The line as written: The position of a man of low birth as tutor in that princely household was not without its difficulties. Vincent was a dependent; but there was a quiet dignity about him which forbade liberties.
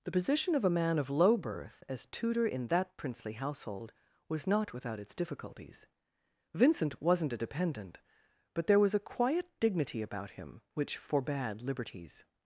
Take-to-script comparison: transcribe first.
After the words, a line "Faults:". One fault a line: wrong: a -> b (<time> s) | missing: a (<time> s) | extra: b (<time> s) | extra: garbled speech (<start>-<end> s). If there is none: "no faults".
The position of a man of low birth as tutor in that princely household was not without its difficulties. Vincent wasn't a dependent; but there was a quiet dignity about him which forbade liberties.
Faults:
wrong: was -> wasn't (7.0 s)